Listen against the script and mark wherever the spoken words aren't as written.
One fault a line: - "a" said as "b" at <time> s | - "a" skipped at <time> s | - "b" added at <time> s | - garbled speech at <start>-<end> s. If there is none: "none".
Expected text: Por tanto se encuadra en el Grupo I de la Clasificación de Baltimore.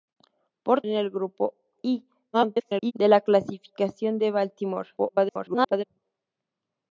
- "tanto se encuadra" skipped at 0.8 s
- garbled speech at 2.3-2.9 s
- garbled speech at 5.0-5.8 s